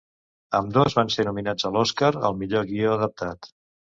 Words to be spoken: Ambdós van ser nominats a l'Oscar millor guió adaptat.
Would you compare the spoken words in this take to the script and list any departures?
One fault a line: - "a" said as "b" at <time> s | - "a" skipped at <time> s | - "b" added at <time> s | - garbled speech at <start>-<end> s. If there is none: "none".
- "al" added at 2.3 s